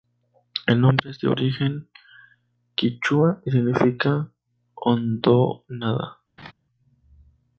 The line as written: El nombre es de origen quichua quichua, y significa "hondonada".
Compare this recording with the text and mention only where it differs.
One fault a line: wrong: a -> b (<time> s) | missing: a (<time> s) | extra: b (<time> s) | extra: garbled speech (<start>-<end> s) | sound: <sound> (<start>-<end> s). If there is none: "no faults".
missing: quichua (3.4 s)
sound: laugh (6.4-6.5 s)